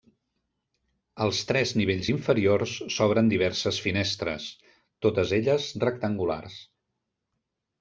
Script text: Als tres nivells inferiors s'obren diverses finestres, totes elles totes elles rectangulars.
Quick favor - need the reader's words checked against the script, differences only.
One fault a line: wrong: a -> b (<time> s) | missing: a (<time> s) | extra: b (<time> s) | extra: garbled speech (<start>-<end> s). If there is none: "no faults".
missing: totes elles (5.7 s)